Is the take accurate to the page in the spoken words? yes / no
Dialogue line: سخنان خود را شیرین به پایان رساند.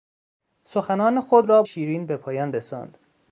yes